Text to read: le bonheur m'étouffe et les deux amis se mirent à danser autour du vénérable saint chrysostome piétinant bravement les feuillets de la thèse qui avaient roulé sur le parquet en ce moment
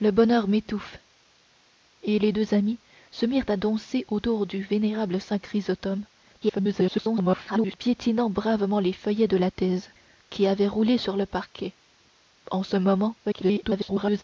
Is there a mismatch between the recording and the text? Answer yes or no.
yes